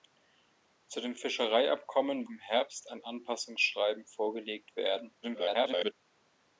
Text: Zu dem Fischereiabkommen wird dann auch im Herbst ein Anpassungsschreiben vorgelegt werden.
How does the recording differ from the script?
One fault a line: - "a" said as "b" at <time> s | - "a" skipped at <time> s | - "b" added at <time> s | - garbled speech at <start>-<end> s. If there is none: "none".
- "wird dann auch" skipped at 2.3 s
- garbled speech at 5.2-5.9 s